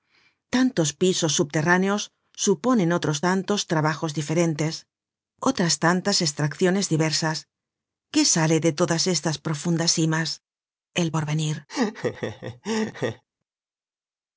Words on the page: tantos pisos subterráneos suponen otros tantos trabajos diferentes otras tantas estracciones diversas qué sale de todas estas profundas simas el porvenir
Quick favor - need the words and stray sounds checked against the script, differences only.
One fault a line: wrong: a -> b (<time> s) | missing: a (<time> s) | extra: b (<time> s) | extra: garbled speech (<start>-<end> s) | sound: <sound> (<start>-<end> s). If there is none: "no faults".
sound: laugh (11.7-13.2 s)